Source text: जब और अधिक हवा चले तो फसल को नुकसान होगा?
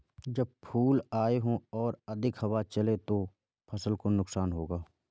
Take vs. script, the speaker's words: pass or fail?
fail